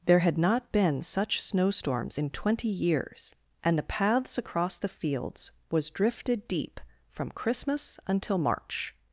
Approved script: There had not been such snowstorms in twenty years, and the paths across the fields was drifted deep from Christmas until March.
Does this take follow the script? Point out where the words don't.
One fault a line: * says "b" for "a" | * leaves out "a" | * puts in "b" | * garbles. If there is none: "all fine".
all fine